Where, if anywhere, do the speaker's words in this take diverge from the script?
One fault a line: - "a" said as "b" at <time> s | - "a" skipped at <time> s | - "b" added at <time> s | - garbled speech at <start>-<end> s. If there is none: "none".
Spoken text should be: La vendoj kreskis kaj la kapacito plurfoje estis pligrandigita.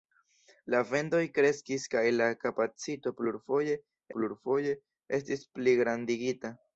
- "plurfoje" added at 4.2 s